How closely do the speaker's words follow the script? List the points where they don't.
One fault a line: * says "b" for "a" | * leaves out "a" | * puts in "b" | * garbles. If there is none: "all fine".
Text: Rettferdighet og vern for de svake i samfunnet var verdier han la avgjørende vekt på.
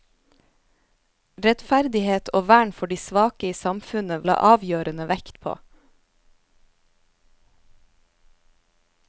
* leaves out "var verdier han"